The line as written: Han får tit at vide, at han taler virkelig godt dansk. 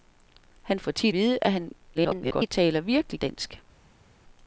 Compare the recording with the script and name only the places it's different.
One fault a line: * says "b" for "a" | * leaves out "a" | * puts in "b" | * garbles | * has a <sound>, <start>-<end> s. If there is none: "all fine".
* leaves out "at"
* garbles
* leaves out "godt"